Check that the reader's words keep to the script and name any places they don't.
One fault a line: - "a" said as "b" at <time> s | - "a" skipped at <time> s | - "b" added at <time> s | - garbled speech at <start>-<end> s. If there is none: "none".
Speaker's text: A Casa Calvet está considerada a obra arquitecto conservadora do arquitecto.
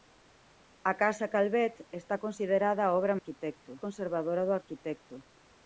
none